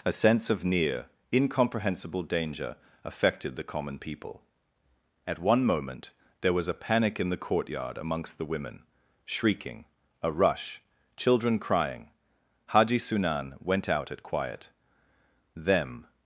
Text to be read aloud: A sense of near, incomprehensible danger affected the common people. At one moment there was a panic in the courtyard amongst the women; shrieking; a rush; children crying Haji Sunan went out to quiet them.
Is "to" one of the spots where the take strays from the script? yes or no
yes